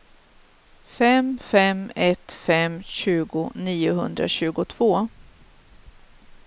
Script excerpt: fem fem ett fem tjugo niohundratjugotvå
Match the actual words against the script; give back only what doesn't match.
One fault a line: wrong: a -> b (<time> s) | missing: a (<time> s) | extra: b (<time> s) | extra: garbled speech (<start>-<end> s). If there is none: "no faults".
no faults